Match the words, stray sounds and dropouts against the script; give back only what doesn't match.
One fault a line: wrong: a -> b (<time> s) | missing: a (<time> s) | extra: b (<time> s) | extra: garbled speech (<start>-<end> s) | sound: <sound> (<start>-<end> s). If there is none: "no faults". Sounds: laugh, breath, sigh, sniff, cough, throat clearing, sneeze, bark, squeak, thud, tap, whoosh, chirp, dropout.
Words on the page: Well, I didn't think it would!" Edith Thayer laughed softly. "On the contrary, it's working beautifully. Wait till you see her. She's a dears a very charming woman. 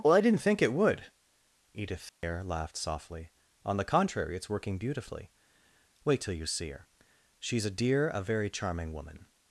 sound: dropout (2.1-2.2 s)
wrong: dears -> dear (7.7 s)